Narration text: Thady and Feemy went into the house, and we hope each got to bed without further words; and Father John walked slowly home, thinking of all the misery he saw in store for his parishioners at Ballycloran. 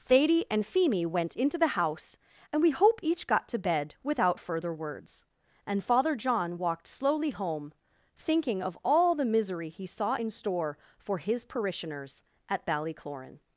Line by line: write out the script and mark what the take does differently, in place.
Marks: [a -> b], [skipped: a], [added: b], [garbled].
Thady and Feemy went into the house, and we hope each got to bed without further words; and Father John walked slowly home, thinking of all the misery he saw in store for his parishioners at Ballycloran.